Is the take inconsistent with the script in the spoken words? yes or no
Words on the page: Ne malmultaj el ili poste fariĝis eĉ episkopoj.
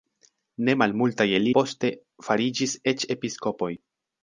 yes